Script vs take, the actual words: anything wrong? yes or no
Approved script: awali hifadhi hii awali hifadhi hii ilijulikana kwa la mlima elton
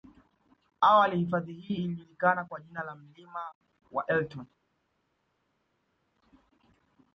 yes